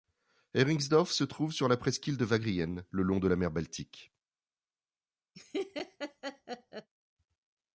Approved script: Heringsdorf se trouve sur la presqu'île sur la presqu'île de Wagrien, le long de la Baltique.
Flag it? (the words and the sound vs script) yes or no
yes